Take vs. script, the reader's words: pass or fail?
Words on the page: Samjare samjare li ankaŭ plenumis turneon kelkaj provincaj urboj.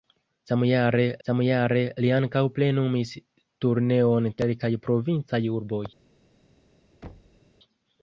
pass